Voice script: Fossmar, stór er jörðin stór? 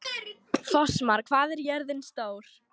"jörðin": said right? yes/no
yes